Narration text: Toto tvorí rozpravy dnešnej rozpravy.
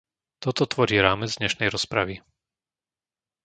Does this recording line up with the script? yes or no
no